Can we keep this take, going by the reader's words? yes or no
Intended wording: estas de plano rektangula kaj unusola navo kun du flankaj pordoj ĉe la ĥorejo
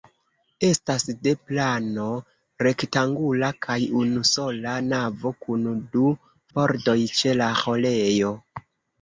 no